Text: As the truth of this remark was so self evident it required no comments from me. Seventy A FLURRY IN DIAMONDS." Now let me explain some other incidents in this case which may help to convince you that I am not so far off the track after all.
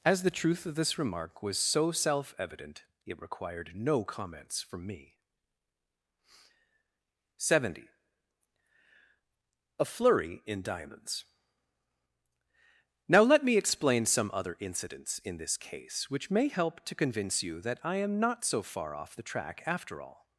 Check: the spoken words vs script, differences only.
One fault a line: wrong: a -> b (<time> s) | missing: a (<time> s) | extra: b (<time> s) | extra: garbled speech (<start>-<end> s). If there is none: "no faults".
no faults